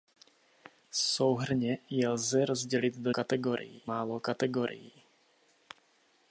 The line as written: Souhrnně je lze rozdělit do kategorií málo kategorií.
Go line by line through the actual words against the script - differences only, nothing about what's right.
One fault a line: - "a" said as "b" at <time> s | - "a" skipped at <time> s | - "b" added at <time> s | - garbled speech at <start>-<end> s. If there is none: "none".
none